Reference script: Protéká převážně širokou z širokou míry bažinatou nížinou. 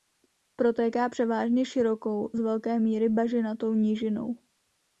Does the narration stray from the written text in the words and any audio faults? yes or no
yes